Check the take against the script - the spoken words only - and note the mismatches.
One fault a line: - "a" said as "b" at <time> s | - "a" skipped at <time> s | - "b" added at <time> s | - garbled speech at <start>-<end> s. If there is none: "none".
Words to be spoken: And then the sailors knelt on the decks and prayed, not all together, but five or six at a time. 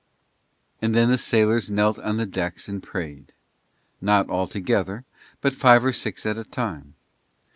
none